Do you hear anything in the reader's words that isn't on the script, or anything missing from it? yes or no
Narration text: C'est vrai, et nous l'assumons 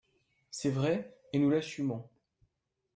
no